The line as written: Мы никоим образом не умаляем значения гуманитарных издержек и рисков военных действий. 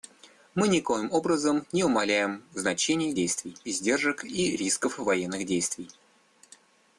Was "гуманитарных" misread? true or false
true